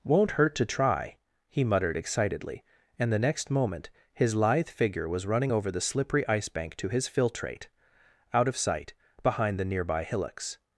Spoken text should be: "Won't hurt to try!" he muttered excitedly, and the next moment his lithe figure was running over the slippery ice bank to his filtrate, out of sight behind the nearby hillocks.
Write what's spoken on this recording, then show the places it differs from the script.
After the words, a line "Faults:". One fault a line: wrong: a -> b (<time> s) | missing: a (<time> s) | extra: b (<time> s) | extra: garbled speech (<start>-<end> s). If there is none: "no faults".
"Won't hurt to try!" he muttered excitedly, and the next moment his lithe figure was running over the slippery ice bank to his filtrate, out of sight behind the nearby hillocks.
Faults:
no faults